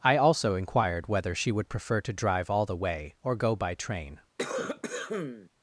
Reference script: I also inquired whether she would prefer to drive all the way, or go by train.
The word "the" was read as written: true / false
true